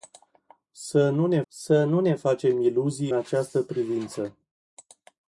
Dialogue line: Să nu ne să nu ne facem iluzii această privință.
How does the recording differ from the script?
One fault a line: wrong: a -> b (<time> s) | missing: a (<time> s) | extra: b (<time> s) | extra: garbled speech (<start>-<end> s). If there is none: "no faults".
no faults